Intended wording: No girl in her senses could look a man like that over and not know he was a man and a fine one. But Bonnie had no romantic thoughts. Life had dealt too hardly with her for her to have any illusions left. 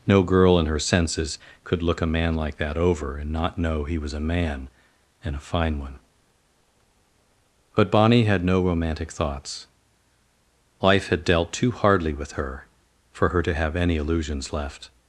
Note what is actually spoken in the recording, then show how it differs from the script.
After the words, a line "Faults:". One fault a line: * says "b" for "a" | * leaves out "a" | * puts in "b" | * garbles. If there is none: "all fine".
No girl in her senses could look a man like that over and not know he was a man and a fine one. But Bonnie had no romantic thoughts. Life had dealt too hardly with her for her to have any illusions left.
Faults:
all fine